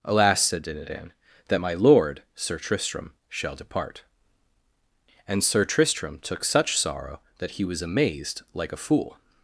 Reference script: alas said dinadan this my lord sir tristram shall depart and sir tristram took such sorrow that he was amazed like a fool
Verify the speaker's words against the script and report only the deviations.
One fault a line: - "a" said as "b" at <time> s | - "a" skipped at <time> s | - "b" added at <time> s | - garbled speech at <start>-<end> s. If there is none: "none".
- "this" said as "that" at 1.5 s